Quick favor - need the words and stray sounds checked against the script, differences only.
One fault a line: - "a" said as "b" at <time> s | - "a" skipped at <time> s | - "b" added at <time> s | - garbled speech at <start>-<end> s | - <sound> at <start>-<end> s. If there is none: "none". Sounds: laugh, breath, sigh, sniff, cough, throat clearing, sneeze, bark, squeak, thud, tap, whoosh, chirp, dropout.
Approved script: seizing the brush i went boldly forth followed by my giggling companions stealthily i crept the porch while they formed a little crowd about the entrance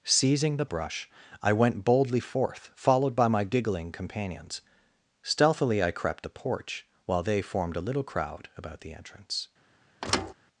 - thud at 10.0-10.3 s